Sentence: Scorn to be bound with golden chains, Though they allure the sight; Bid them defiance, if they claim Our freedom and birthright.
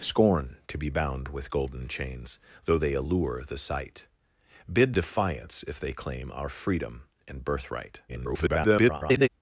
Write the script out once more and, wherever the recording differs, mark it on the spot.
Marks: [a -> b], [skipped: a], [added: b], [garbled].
Scorn to be bound with golden chains, Though they allure the sight; Bid [skipped: them] defiance, if they claim Our freedom and birthright. [garbled]